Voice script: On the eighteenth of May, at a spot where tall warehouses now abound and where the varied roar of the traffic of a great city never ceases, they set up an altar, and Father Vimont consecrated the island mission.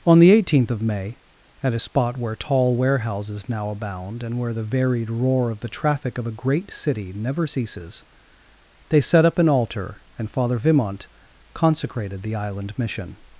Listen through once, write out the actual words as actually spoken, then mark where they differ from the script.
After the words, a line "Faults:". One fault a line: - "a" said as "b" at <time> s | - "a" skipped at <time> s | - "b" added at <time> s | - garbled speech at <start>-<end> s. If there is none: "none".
On the eighteenth of May, at a spot where tall warehouses now abound and where the varied roar of the traffic of a great city never ceases, they set up an altar, and Father Vimont consecrated the island mission.
Faults:
none